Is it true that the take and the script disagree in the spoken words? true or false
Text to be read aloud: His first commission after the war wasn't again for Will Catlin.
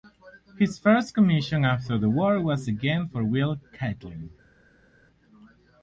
true